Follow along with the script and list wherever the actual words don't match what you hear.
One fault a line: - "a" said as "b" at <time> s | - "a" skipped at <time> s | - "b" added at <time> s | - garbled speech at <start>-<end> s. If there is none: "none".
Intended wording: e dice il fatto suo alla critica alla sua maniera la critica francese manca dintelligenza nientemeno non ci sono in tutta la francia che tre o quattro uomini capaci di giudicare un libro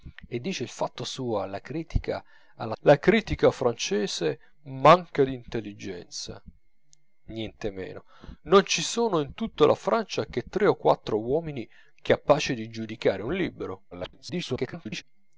- "sua maniera" skipped at 2.7 s
- garbled speech at 13.9-15.0 s